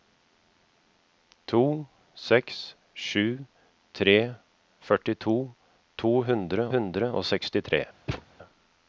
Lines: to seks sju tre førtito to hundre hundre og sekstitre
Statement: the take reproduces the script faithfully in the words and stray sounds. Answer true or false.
false